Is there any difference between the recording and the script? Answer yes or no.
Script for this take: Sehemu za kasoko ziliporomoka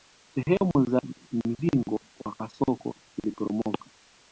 yes